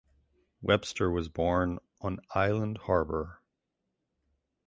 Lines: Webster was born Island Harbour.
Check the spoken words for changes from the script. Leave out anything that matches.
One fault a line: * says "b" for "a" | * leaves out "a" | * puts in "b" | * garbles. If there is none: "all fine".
* puts in "on"